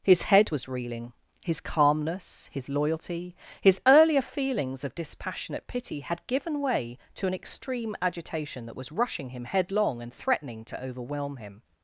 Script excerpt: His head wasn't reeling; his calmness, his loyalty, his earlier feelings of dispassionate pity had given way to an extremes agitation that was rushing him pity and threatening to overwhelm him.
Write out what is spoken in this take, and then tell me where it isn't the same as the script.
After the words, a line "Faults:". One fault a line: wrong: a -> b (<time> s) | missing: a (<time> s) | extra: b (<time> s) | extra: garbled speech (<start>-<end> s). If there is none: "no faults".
His head was reeling; his calmness, his loyalty, his earlier feelings of dispassionate pity had given way to an extreme agitation that was rushing him headlong and threatening to overwhelm him.
Faults:
wrong: wasn't -> was (0.5 s)
wrong: extremes -> extreme (7.3 s)
wrong: pity -> headlong (9.5 s)